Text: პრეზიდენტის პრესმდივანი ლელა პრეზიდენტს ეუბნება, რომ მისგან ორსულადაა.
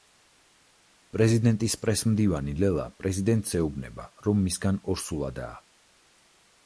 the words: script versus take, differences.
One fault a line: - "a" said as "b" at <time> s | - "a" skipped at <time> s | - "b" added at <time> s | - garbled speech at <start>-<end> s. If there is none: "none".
none